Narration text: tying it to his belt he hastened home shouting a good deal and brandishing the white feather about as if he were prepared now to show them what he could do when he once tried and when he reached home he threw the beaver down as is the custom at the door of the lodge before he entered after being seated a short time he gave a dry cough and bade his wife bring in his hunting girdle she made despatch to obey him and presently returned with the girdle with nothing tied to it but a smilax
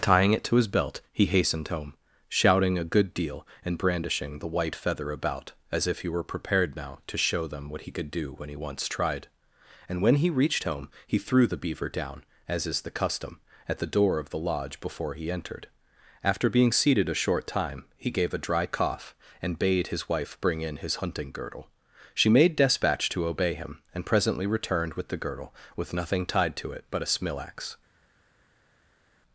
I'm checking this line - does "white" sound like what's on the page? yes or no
yes